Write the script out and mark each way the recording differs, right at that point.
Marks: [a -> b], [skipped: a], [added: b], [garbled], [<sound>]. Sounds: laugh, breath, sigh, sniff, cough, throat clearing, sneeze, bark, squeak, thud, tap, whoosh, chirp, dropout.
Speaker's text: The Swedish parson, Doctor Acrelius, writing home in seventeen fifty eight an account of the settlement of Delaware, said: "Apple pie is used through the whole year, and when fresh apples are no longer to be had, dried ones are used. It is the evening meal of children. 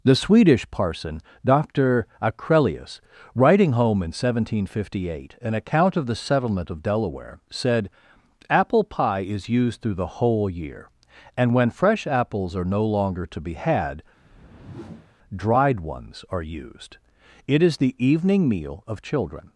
The Swedish parson, Doctor Acrelius, writing home in seventeen fifty eight an account of the settlement of Delaware, said: "Apple pie is used through the whole year, and when fresh apples are no longer to be had, [whoosh] dried ones are used. It is the evening meal of children.